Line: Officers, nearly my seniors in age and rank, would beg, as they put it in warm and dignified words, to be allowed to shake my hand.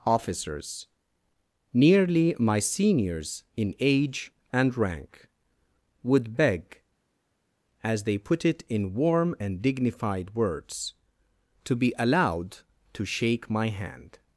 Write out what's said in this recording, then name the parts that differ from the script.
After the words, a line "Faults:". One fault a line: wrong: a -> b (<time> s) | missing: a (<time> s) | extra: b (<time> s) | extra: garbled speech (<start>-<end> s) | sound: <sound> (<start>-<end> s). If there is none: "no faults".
Officers, nearly my seniors in age and rank, would beg, as they put it in warm and dignified words, to be allowed to shake my hand.
Faults:
no faults